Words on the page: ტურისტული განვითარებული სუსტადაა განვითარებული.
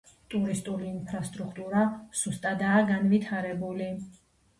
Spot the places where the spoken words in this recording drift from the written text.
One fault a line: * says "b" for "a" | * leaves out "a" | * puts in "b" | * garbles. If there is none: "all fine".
* says "ინფრასტრუქტურა" for "განვითარებული"